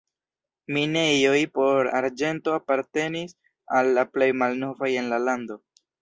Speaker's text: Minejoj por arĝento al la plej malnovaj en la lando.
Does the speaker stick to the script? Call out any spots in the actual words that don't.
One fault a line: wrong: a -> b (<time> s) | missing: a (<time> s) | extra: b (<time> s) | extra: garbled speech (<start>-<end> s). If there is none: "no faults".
extra: apartenis (2.6 s)